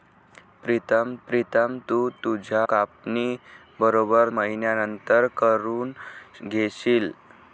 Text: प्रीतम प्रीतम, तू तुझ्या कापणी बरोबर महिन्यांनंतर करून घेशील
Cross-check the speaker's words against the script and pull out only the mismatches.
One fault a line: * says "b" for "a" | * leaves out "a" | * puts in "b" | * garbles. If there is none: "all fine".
all fine